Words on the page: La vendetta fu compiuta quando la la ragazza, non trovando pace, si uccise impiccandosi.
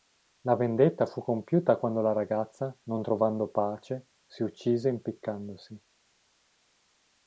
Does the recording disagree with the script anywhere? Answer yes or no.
yes